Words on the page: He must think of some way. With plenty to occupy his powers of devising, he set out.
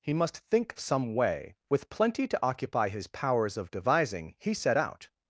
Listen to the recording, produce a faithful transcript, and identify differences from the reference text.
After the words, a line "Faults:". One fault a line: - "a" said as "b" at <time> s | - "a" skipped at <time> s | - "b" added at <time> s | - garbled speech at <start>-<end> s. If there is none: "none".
He must think some way. With plenty to occupy his powers of devising, he set out.
Faults:
- "of" skipped at 0.7 s